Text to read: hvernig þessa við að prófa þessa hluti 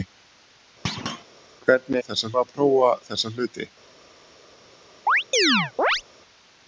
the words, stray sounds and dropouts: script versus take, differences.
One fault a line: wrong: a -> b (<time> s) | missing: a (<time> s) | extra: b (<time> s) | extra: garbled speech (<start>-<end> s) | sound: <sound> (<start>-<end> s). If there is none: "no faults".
sound: thud (0.8-1.2 s)
sound: chirp (5.1-6.0 s)